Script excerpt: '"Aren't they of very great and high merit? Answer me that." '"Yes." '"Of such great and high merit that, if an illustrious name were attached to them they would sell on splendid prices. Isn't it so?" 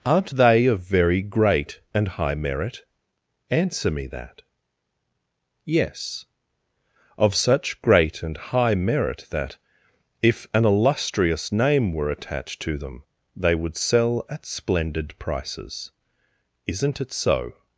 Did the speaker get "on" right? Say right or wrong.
wrong